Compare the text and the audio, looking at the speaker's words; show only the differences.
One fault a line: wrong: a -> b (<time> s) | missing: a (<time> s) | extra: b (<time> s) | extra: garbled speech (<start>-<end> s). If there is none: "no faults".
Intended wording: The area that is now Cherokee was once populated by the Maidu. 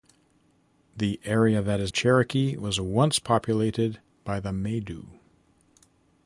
missing: now (1.9 s)